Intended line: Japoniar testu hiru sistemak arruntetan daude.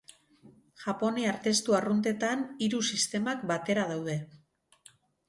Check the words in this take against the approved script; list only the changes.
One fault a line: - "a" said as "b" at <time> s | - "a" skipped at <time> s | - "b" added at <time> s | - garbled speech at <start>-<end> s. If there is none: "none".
- "arruntetan" added at 1.8 s
- "arruntetan" said as "batera" at 3.5 s